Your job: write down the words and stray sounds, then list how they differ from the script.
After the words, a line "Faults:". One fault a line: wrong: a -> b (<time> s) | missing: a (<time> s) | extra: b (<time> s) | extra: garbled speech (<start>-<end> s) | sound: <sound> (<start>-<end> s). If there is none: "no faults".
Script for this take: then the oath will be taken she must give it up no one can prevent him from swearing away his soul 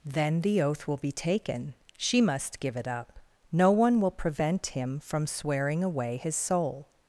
then the oath will be taken she must give it up no one will prevent him from swearing away his soul
Faults:
wrong: can -> will (4.0 s)